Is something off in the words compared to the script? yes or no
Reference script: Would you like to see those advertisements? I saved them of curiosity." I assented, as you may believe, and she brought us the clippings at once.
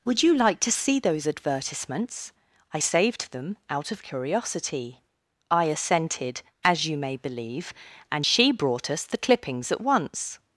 yes